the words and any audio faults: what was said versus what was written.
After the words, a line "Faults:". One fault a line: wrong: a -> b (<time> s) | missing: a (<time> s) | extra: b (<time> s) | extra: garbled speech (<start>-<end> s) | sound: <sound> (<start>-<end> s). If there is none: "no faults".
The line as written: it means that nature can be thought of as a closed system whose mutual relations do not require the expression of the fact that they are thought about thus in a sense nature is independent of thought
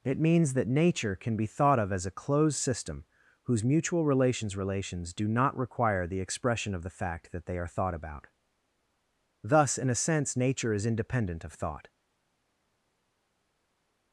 it means that nature can be thought of as a closed system whose mutual relations relations do not require the expression of the fact that they are thought about thus in a sense nature is independent of thought
Faults:
extra: relations (4.6 s)